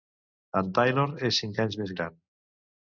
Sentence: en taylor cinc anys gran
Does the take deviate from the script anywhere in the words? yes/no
yes